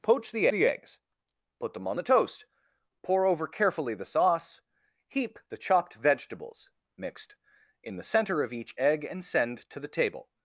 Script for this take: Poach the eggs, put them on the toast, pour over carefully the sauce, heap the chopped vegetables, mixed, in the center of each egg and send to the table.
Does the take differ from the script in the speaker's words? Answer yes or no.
yes